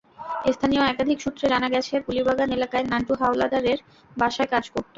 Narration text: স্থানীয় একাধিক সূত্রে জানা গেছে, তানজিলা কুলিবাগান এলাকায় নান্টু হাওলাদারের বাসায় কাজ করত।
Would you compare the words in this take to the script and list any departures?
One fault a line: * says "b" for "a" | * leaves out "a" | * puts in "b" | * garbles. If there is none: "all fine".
* leaves out "তানজিলা"